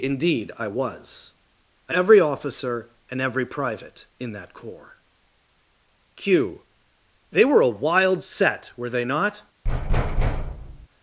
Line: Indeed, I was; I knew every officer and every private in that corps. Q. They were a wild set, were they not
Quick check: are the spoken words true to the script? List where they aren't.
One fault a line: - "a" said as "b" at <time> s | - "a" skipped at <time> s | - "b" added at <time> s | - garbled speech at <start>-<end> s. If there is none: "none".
- "knew" skipped at 1.9 s